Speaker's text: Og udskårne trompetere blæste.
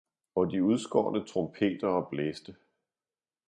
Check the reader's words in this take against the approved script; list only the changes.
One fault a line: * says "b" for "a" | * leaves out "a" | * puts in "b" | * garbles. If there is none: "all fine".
* puts in "de"